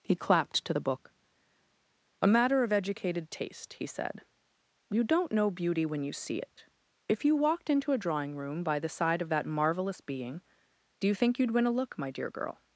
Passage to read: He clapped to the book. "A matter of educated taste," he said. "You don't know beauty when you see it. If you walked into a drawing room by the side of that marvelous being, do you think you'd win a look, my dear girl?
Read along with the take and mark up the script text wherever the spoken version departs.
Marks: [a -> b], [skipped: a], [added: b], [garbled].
He clapped to the book. "A matter of educated taste," he said. "You don't know beauty when you see it. If you walked into a drawing room by the side of that marvelous being, do you think you'd win a look, my dear girl?